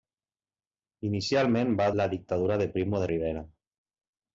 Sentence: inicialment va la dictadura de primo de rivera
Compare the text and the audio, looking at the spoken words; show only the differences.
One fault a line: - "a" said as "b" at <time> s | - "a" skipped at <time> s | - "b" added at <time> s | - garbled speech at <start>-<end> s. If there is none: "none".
none